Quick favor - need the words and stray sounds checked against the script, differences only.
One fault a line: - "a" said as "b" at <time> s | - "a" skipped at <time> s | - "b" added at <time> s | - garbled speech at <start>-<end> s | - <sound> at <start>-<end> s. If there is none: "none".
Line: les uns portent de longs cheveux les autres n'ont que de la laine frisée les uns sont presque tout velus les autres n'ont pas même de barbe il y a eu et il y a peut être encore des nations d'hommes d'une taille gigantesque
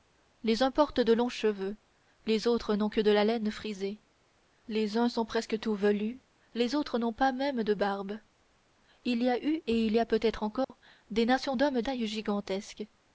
- dropout at 10.6-10.7 s
- "d'une" skipped at 11.8 s